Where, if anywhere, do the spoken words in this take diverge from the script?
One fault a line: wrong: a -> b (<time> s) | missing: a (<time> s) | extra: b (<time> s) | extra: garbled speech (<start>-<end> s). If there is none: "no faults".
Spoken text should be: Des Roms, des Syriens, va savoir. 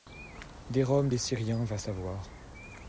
no faults